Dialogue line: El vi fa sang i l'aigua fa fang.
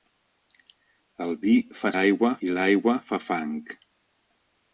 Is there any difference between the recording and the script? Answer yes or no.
yes